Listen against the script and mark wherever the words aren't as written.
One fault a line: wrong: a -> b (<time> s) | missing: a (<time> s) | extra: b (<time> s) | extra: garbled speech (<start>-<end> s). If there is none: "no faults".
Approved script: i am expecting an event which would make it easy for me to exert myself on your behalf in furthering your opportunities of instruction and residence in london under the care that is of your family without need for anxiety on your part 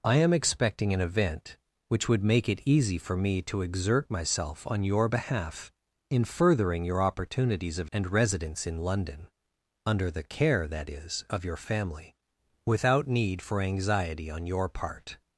missing: instruction (7.9 s)